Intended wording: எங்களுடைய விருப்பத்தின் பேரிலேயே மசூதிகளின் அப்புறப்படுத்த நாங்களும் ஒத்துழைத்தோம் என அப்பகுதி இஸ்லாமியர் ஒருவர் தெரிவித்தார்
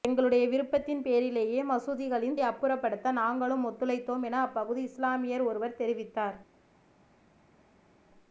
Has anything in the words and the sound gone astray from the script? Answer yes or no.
no